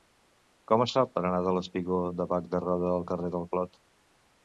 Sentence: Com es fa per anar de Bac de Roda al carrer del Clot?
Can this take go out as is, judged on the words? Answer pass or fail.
fail